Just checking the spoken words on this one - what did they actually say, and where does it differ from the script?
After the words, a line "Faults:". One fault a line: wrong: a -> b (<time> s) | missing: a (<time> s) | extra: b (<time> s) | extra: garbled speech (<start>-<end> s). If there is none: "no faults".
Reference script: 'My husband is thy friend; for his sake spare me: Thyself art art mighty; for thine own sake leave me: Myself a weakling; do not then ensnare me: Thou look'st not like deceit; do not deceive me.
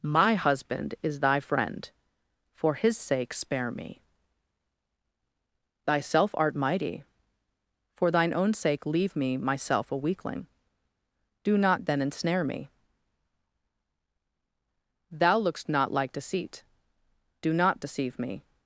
'My husband is thy friend; for his sake spare me: Thyself art mighty; for thine own sake leave me: Myself a weakling; do not then ensnare me: Thou look'st not like deceit; do not deceive me.
Faults:
missing: art (6.5 s)